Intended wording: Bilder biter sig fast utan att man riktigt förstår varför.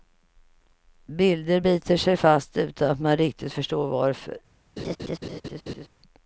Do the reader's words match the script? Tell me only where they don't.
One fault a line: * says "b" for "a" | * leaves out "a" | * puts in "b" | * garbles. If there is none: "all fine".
all fine